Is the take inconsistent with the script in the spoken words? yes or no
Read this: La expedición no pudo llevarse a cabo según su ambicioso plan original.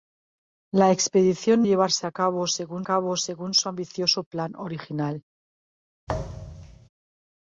yes